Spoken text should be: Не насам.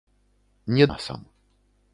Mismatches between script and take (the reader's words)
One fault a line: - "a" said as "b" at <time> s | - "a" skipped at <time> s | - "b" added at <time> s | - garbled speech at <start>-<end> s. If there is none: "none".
none